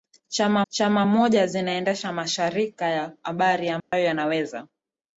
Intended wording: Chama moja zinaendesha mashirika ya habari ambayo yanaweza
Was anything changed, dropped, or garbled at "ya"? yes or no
no